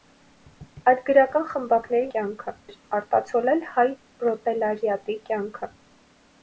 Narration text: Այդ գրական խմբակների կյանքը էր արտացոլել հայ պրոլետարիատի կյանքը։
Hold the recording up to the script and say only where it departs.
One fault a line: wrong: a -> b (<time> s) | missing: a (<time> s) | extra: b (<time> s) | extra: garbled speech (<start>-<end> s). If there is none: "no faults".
no faults